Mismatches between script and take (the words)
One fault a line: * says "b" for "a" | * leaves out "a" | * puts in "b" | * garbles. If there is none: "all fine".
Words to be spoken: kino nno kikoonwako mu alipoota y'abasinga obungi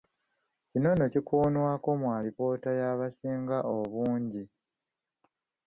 all fine